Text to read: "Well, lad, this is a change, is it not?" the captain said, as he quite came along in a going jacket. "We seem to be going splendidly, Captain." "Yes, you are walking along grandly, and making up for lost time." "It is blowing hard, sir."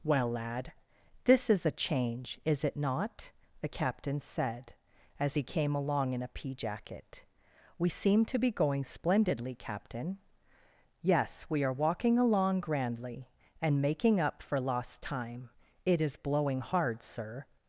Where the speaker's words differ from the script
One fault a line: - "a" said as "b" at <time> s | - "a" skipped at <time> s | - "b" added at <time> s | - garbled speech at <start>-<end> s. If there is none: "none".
- "quite" skipped at 5.4 s
- "going" said as "pea" at 6.3 s
- "you" said as "we" at 11.5 s